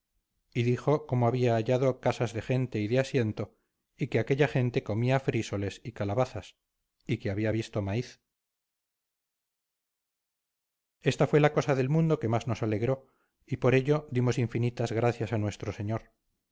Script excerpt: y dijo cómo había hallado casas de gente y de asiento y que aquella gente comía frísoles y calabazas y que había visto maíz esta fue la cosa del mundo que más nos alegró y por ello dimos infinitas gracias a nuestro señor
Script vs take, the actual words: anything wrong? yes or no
no